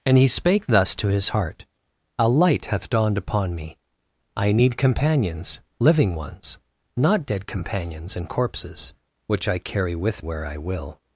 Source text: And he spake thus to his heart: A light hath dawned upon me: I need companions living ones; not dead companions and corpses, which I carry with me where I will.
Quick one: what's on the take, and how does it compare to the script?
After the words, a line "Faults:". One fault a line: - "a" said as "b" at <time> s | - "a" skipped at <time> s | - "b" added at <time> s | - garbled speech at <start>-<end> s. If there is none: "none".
And he spake thus to his heart: A light hath dawned upon me: I need companions living ones; not dead companions and corpses, which I carry with where I will.
Faults:
- "me" skipped at 10.2 s